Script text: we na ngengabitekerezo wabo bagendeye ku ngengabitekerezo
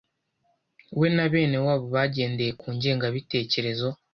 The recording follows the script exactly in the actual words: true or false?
false